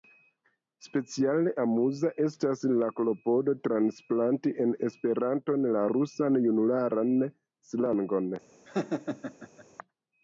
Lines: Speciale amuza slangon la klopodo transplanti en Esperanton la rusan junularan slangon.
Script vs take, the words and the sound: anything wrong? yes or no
yes